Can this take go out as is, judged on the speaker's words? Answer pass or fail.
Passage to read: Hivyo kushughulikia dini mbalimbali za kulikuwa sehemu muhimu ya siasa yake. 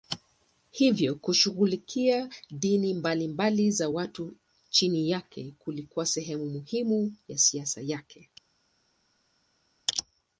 fail